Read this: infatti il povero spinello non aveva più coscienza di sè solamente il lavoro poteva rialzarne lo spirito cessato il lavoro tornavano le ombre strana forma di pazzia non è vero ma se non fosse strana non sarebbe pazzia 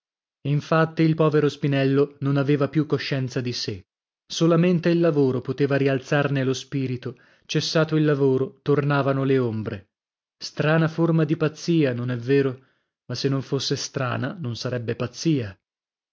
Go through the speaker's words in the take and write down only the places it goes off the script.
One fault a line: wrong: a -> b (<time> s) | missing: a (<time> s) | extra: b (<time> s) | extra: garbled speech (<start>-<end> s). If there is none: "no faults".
no faults